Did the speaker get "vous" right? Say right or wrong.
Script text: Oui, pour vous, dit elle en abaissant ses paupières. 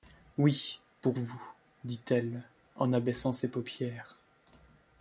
right